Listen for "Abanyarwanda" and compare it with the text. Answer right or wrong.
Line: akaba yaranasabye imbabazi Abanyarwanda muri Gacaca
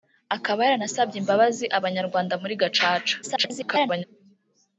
right